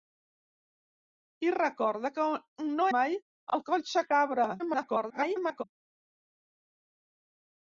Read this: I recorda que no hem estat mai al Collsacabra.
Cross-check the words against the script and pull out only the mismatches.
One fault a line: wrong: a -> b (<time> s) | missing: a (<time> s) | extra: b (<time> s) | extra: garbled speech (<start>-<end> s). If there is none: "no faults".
missing: hem estat (2.9 s)
extra: garbled speech (4.6-5.6 s)